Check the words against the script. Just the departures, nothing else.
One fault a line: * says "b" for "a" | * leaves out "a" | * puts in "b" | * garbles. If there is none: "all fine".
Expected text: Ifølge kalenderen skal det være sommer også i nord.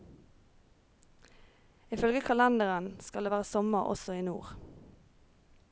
all fine